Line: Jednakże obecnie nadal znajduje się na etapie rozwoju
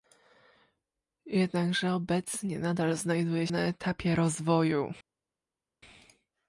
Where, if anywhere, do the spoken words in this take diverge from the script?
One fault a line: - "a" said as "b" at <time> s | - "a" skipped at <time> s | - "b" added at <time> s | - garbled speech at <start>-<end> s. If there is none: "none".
- "się" skipped at 3.5 s